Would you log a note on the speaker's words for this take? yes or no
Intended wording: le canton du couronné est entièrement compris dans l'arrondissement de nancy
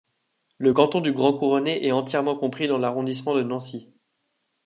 yes